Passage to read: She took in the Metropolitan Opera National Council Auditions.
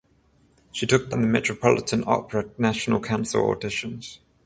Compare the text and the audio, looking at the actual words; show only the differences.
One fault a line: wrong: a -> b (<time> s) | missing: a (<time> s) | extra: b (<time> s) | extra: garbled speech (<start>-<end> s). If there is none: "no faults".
no faults